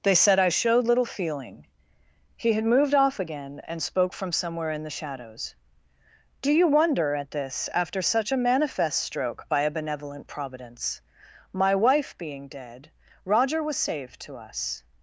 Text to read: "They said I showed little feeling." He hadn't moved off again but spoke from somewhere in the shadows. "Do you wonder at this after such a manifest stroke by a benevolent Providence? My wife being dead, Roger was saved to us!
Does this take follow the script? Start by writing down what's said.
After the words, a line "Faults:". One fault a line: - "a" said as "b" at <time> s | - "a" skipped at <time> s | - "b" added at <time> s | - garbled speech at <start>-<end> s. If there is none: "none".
"They said I showed little feeling." He had moved off again and spoke from somewhere in the shadows. "Do you wonder at this after such a manifest stroke by a benevolent Providence? My wife being dead, Roger was saved to us!
Faults:
- "hadn't" said as "had" at 2.5 s
- "but" said as "and" at 3.7 s